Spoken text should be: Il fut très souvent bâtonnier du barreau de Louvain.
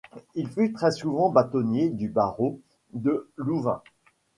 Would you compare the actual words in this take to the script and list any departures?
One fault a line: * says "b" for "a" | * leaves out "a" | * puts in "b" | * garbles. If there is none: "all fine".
all fine